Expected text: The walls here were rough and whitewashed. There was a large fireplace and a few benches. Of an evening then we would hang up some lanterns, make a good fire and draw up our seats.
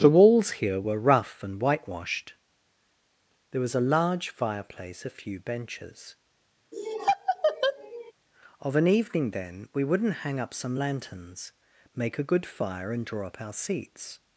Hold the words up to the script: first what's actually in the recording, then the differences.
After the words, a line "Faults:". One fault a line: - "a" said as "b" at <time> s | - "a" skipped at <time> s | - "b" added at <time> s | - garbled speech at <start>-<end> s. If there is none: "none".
The walls here were rough and whitewashed. There was a large fireplace a few benches. Of an evening then we wouldn't hang up some lanterns, make a good fire and draw up our seats.
Faults:
- "and" skipped at 5.0 s
- "would" said as "wouldn't" at 9.8 s